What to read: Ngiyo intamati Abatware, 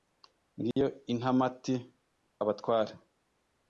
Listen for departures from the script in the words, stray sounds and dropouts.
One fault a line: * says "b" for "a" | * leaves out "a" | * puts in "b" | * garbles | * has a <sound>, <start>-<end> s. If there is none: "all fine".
* has a dropout, 0.7-0.8 s